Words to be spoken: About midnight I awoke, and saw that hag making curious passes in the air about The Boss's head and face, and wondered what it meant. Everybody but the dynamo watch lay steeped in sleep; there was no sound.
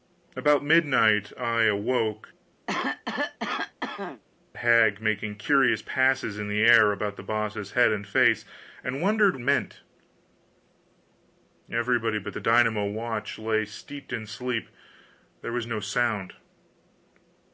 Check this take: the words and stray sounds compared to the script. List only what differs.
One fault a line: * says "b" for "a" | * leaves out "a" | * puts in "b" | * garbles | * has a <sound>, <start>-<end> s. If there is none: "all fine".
* leaves out "and saw that"
* has a cough, 2.7-4.2 s
* leaves out "what it"